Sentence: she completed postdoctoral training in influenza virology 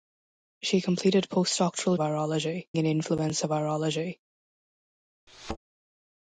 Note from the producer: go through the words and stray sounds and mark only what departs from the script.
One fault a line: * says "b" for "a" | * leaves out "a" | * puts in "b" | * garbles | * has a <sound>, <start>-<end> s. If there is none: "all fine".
* says "virology" for "training"
* has a thud, 5.3-5.6 s